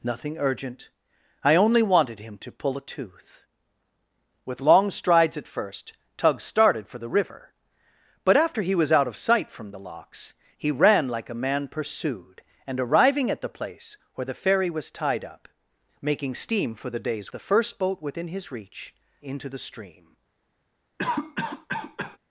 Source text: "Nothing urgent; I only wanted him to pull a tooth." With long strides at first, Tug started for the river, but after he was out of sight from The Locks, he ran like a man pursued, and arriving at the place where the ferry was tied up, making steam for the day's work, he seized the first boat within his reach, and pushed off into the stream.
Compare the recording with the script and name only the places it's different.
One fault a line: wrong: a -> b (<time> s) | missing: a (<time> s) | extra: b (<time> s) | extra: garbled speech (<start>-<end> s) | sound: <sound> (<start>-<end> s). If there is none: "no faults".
missing: work he seized (17.3 s)
missing: and pushed off (18.9 s)
sound: cough (21.0-22.2 s)